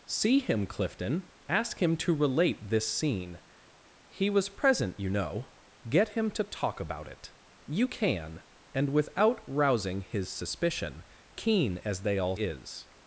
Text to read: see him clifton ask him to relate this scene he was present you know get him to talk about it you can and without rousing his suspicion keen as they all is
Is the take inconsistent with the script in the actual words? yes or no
no